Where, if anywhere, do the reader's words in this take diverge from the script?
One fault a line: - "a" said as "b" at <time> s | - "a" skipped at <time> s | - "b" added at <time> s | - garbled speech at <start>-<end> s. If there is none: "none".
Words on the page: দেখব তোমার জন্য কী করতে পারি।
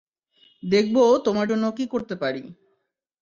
none